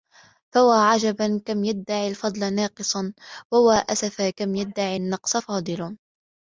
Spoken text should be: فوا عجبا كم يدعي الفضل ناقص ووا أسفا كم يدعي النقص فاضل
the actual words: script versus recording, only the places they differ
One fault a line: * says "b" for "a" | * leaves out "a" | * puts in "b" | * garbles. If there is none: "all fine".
all fine